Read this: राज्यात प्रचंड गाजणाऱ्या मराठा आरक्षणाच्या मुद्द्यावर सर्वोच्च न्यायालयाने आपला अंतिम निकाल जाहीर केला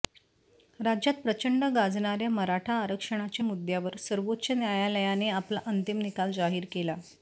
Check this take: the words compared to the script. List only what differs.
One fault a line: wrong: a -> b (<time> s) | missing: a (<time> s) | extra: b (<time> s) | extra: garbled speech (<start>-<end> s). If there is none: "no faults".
no faults